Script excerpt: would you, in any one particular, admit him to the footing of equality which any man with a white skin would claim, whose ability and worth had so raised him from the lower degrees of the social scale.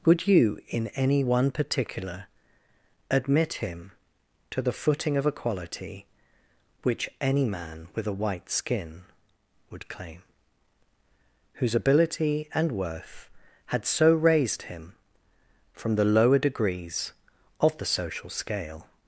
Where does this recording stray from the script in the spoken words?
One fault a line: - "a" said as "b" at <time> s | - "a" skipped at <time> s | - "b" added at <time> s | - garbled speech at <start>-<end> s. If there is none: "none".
none